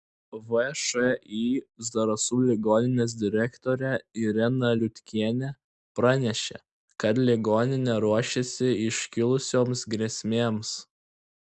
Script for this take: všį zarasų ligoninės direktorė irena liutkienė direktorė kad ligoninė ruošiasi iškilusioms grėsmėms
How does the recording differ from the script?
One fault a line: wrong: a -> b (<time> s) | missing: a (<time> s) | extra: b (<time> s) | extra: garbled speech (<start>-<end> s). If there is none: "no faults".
wrong: direktorė -> pranešė (6.0 s)